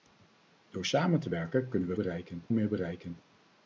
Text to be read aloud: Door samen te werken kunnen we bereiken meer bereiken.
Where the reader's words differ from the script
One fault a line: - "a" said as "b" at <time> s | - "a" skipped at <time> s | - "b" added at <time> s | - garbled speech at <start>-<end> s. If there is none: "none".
none